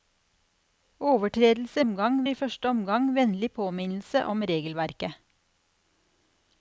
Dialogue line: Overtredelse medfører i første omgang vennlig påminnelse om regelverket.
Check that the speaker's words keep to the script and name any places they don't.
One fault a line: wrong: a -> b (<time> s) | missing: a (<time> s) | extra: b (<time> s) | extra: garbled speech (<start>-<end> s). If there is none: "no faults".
wrong: medfører -> omgang (1.8 s)